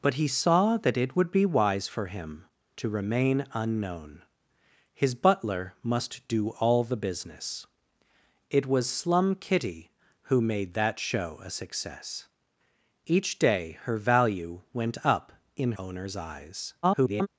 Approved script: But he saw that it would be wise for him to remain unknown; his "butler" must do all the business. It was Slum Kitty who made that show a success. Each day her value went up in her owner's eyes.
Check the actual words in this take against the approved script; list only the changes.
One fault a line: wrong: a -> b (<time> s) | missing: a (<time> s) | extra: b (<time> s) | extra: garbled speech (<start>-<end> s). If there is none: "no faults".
missing: her (15.7 s)
extra: garbled speech (16.8-17.3 s)